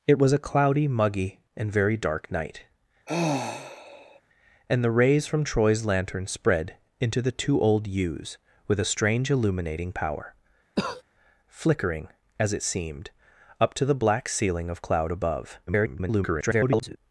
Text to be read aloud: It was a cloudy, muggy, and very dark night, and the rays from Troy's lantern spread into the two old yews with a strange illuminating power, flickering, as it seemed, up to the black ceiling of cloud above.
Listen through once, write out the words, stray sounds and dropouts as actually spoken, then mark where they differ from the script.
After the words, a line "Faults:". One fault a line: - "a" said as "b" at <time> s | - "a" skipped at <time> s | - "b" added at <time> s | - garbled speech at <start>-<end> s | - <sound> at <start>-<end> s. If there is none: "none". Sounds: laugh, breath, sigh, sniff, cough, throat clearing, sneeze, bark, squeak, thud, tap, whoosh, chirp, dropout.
It was a cloudy, muggy, and very dark night, and the rays from Troy's lantern spread into the two old yews with a strange illuminating power, flickering, as it seemed, up to the black ceiling of cloud above. [garbled]
Faults:
- sigh at 3.1-4.2 s
- cough at 10.8-11.0 s
- garbled speech at 15.7-17.0 s